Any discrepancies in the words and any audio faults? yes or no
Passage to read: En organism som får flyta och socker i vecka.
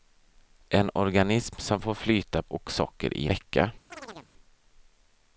yes